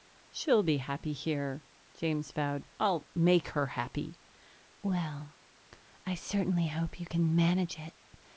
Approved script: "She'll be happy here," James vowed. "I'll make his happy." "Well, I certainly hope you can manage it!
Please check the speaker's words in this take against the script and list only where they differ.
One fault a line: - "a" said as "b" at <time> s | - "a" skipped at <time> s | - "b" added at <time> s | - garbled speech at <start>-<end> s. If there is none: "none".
- "his" said as "her" at 3.5 s